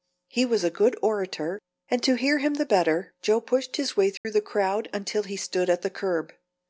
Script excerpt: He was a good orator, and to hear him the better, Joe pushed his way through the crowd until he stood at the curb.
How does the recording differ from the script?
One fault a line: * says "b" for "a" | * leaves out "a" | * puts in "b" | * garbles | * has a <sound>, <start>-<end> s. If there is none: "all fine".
* has a dropout, 4.2-4.3 s